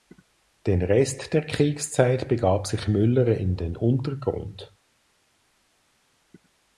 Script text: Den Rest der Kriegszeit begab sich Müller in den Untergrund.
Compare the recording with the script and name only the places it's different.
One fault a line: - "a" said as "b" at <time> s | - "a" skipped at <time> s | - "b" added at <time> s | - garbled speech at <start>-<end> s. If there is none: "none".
none